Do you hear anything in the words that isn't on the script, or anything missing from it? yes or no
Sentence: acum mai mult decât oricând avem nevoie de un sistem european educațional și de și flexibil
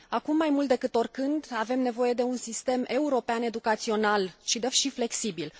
no